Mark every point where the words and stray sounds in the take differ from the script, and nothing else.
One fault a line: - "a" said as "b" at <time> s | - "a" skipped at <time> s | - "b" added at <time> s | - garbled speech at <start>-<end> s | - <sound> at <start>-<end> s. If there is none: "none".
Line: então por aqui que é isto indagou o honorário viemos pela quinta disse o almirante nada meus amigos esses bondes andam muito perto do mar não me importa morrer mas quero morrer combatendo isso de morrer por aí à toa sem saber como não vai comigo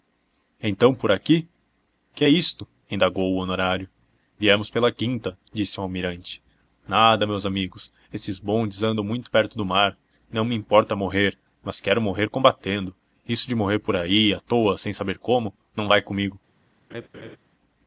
- laugh at 16.9-17.4 s